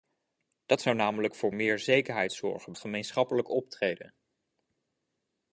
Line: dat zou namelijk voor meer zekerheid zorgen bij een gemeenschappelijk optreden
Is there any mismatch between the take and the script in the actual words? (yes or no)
yes